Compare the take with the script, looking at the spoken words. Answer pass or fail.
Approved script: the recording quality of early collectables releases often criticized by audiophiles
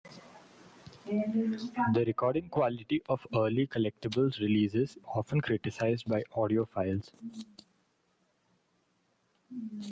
pass